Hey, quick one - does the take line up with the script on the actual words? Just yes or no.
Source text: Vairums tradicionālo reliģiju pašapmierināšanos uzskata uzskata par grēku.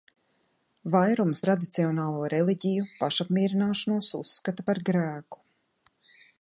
no